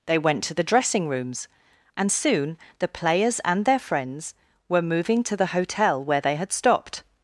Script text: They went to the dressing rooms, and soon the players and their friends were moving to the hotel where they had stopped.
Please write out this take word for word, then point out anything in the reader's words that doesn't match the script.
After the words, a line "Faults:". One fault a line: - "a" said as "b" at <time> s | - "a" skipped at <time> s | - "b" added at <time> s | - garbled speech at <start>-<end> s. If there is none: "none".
They went to the dressing rooms, and soon the players and their friends were moving to the hotel where they had stopped.
Faults:
none